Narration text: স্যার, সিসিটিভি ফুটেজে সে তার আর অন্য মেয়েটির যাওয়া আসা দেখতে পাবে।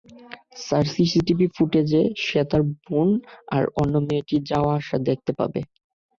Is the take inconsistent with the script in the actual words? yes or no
yes